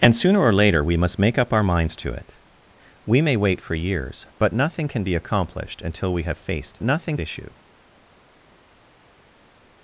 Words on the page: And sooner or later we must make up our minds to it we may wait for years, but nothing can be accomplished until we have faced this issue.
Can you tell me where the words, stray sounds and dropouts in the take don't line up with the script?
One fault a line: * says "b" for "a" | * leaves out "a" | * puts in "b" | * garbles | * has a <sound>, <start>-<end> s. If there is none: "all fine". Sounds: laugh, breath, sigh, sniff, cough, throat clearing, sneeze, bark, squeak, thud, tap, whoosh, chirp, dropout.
* says "nothing" for "this"